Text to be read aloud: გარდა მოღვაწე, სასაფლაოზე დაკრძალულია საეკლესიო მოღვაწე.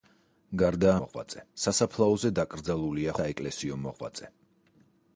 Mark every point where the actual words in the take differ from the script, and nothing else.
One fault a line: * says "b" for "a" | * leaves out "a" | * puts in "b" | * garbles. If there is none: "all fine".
all fine